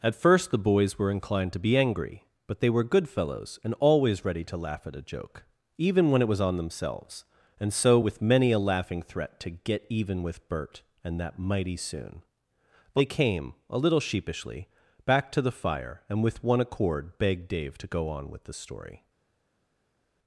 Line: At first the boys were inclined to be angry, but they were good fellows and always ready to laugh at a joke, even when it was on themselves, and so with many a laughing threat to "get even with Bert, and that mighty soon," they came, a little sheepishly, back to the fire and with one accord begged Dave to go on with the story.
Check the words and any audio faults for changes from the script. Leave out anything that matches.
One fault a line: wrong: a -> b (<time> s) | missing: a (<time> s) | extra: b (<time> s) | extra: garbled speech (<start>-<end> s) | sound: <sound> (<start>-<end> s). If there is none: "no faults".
no faults